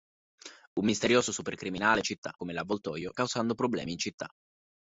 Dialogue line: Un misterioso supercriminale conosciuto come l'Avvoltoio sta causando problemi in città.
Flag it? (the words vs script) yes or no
yes